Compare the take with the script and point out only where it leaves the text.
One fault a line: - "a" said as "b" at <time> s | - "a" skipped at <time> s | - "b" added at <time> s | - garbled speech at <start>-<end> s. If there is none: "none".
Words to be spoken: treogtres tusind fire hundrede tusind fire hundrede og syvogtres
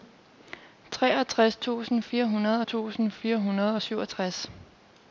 none